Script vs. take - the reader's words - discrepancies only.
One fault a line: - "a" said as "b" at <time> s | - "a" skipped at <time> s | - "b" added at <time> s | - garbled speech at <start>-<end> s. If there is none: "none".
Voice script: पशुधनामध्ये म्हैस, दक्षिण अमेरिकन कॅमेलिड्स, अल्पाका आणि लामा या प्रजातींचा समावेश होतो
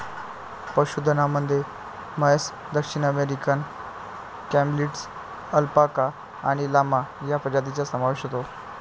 none